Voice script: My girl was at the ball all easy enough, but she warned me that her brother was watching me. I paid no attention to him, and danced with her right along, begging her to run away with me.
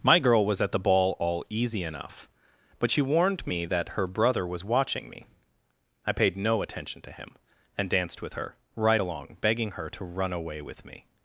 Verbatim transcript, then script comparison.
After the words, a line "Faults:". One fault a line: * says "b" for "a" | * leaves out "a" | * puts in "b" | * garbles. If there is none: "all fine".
My girl was at the ball all easy enough, but she warned me that her brother was watching me. I paid no attention to him, and danced with her right along, begging her to run away with me.
Faults:
all fine